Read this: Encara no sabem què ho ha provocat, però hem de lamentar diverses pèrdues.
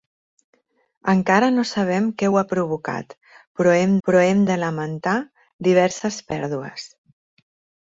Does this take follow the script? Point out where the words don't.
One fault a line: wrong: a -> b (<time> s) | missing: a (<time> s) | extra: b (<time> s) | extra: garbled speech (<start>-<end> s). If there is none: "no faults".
extra: però hem (4.1 s)